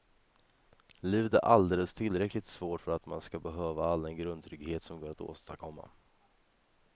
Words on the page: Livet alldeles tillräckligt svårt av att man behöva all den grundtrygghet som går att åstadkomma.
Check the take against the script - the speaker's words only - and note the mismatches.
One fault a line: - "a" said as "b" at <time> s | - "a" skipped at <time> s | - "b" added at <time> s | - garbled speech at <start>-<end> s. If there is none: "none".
- "är" added at 1.3 s
- "av" said as "för" at 2.8 s
- "ska" added at 3.2 s